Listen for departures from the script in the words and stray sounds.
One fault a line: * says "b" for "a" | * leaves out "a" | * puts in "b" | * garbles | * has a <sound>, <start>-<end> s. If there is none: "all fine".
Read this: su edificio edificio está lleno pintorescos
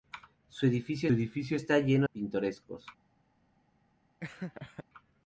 * has a laugh, 4.2-4.8 s